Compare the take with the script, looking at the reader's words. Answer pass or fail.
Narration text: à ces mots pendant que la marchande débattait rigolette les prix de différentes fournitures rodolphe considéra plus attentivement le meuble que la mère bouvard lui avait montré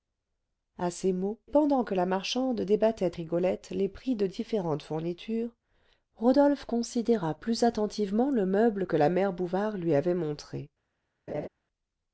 pass